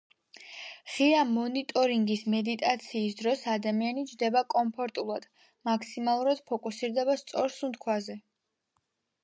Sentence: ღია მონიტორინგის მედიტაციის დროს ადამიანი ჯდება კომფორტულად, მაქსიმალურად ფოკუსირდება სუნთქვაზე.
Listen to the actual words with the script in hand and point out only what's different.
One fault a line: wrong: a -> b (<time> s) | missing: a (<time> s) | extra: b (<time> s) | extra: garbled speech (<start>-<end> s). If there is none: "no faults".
extra: სწორ (7.2 s)